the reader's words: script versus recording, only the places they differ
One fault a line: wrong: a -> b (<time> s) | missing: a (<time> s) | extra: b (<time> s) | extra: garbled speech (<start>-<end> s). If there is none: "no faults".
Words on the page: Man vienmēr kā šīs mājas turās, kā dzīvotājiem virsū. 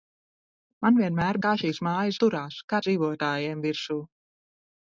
no faults